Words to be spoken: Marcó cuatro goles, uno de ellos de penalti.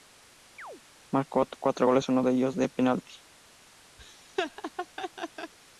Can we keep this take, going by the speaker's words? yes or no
yes